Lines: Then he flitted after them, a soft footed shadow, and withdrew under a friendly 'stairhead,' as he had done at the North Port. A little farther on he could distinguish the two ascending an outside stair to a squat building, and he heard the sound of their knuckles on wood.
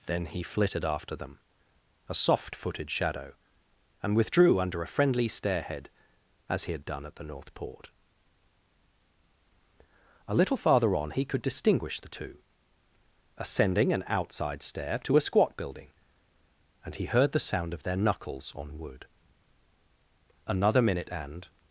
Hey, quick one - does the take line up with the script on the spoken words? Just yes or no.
no